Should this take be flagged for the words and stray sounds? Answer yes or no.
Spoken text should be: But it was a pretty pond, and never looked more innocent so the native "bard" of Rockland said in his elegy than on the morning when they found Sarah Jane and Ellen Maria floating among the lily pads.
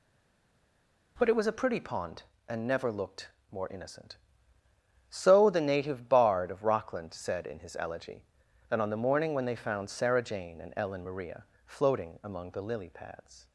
yes